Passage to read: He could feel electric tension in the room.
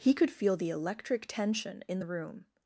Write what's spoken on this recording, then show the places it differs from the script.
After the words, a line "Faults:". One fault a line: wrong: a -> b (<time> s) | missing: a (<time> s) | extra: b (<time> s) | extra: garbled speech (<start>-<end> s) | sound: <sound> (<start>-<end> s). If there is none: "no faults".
He could feel the electric tension in the room.
Faults:
extra: the (0.6 s)